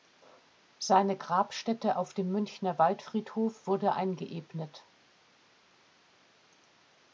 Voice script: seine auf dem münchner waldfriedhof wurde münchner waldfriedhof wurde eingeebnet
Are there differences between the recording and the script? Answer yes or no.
yes